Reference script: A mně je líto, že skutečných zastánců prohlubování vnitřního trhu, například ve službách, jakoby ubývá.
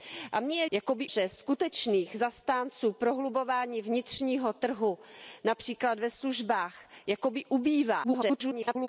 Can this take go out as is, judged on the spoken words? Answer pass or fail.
fail